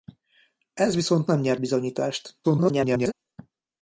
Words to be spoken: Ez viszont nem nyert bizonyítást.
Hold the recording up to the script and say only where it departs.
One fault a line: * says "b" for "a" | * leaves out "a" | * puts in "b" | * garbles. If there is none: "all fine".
* garbles